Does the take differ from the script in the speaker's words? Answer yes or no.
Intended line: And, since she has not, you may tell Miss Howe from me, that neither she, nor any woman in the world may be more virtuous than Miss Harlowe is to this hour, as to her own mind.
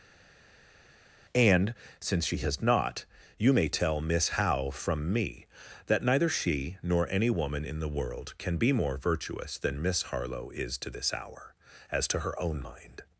yes